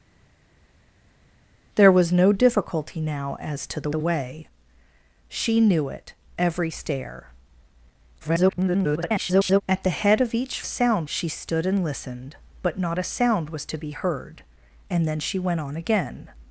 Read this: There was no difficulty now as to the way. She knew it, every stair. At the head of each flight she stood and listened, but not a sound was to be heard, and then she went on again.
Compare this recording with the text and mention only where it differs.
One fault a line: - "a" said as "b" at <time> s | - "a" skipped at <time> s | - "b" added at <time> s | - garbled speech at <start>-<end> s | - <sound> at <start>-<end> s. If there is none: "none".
- "the" added at 3.9 s
- garbled speech at 8.2-9.6 s
- "flight" said as "sound" at 10.6 s